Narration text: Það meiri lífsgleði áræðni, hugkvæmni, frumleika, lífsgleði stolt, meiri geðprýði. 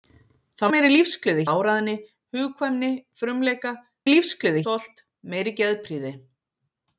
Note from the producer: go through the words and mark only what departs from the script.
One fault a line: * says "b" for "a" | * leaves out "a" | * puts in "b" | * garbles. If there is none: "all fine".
all fine